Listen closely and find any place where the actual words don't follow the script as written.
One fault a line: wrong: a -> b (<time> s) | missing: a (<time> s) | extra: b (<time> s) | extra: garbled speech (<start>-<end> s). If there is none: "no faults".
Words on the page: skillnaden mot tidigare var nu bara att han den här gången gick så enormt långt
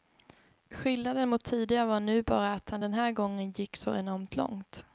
no faults